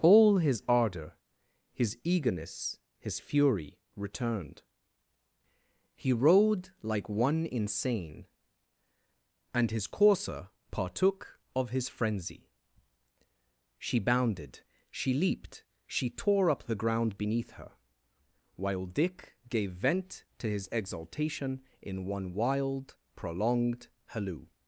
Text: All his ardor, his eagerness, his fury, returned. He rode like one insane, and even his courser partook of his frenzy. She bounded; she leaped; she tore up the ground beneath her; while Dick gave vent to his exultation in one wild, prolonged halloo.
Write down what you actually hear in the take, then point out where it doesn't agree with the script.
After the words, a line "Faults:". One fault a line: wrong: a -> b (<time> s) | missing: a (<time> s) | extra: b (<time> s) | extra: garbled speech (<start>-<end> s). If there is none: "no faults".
All his ardor, his eagerness, his fury, returned. He rode like one insane, and his courser partook of his frenzy. She bounded; she leaped; she tore up the ground beneath her; while Dick gave vent to his exultation in one wild, prolonged halloo.
Faults:
missing: even (9.7 s)